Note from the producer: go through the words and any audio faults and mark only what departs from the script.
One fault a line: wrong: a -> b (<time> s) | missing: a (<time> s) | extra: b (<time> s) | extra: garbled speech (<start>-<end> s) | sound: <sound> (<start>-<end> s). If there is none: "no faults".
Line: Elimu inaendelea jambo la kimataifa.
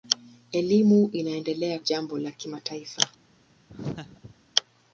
sound: laugh (3.7-4.4 s)